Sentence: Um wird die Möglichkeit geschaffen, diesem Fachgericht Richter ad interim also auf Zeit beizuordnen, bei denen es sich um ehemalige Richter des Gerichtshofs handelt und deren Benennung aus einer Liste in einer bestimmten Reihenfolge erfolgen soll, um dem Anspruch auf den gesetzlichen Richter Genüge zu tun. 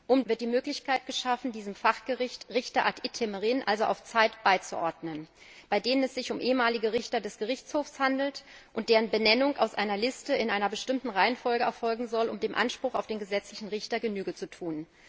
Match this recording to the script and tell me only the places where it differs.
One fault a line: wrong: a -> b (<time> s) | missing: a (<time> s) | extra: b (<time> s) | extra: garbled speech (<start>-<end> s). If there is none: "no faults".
no faults